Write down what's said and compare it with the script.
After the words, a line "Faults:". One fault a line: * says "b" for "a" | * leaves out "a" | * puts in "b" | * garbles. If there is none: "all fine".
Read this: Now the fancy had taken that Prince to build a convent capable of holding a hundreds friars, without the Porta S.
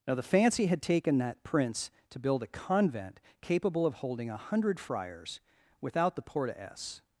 Now the fancy had taken that Prince to build a convent capable of holding a hundred friars, without the Porta S.
Faults:
* says "hundred" for "hundreds"